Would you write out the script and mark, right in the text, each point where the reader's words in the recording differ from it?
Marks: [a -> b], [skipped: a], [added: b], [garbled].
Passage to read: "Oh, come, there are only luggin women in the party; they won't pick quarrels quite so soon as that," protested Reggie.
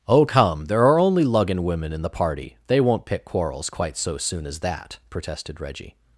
"Oh, come, there are only luggin women in the party; they won't pick quarrels quite so soon as that," protested Reggie.